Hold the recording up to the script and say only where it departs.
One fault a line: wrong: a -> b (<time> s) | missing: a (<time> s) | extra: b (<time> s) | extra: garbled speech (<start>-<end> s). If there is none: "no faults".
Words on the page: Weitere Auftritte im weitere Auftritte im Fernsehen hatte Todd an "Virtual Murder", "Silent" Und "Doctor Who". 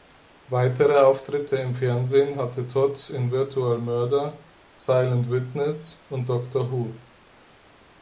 missing: weitere Auftritte im (1.8 s)
wrong: an -> in (3.1 s)
extra: Witness (5.3 s)